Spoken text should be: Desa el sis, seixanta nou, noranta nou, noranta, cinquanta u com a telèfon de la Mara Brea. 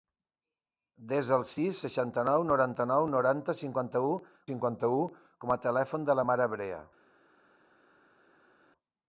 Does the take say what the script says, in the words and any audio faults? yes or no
no